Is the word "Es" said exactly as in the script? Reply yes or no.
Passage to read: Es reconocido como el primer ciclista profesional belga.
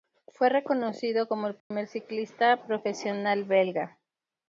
no